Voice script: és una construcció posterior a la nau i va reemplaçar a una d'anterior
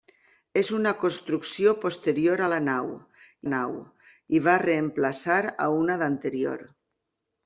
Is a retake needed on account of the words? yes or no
yes